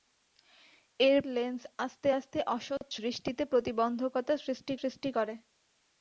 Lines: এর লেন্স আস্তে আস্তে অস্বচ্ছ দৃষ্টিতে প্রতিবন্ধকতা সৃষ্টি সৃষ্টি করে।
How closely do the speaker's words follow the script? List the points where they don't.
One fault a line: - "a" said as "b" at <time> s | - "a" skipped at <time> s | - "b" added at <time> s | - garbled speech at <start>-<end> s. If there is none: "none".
none